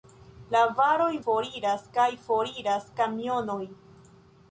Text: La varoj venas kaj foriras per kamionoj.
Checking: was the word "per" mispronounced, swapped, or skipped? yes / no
yes